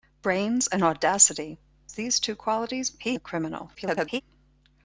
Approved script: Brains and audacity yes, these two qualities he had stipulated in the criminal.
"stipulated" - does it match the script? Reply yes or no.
no